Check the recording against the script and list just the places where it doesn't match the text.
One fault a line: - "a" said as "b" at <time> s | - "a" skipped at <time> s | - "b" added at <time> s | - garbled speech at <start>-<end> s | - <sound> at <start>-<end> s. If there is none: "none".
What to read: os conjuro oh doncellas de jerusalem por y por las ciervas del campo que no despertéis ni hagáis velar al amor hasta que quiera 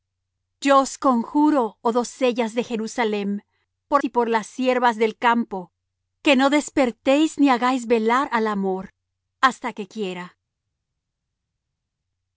none